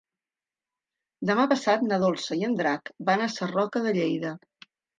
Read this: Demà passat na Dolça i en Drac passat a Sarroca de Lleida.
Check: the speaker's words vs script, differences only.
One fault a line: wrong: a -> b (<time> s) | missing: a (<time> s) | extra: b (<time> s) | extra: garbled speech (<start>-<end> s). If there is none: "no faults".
wrong: passat -> van (3.1 s)